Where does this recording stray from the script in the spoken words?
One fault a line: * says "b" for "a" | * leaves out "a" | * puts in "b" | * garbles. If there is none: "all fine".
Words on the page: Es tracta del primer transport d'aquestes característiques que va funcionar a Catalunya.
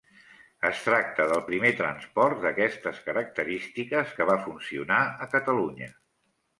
all fine